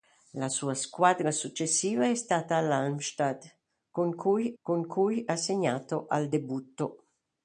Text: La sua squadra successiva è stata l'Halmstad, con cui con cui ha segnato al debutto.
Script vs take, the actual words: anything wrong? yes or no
no